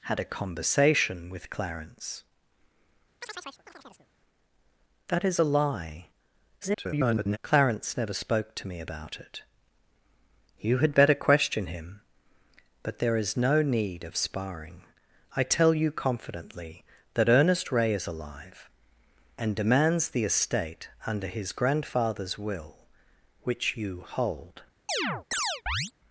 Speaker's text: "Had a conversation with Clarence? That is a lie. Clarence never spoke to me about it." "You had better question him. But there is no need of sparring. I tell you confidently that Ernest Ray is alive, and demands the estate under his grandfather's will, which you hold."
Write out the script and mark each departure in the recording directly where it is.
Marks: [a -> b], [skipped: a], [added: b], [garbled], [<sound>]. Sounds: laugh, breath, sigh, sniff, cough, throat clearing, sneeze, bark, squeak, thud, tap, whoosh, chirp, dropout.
"Had a conversation with Clarence? [chirp] That is a lie. [garbled] Clarence never spoke to me about it." "You had better question him. But there is no need of sparring. I tell you confidently that Ernest Ray is alive, and demands the estate under his grandfather's will, which you hold." [chirp]